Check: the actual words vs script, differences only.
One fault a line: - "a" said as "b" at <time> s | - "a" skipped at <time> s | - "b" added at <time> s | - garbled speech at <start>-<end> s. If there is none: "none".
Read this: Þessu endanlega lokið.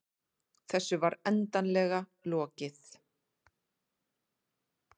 - "var" added at 1.0 s